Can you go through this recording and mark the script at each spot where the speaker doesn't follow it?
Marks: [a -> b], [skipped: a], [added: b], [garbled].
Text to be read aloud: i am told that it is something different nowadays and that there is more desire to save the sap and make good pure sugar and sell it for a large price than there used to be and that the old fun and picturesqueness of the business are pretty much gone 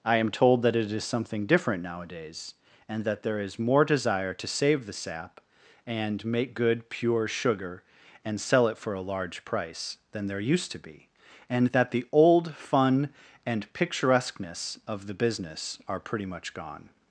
i am told that it is something different nowadays and that there is more desire to save the sap and make good pure sugar and sell it for a large price than there used to be and that the old fun and picturesqueness of the business are pretty much gone